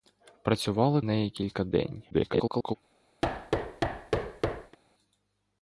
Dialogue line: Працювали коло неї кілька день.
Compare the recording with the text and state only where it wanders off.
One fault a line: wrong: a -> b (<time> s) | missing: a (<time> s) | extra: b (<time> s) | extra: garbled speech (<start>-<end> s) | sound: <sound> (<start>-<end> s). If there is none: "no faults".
missing: коло (1.0 s)
extra: garbled speech (2.1-2.8 s)
sound: thud (3.2-4.8 s)